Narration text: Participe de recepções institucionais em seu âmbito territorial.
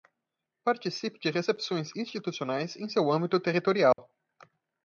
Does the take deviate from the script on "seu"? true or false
false